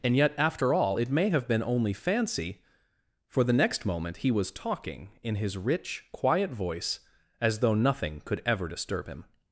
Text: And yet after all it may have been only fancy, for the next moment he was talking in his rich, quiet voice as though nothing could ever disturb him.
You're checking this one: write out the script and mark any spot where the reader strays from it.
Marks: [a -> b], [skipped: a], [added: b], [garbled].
And yet after all it may have been only fancy, for the next moment he was talking in his rich, quiet voice as though nothing could ever disturb him.